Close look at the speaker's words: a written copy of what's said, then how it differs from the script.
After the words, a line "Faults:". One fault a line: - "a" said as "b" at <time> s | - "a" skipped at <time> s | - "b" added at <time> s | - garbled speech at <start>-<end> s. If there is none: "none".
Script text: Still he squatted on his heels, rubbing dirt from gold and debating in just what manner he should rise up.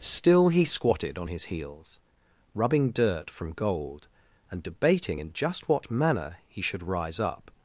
Still he squatted on his heels, rubbing dirt from gold and debating in just what manner he should rise up.
Faults:
none